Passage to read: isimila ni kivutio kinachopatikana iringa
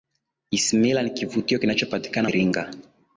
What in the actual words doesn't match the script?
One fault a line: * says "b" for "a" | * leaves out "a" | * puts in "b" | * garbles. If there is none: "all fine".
all fine